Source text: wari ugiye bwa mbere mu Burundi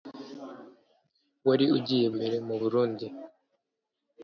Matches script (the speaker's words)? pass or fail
fail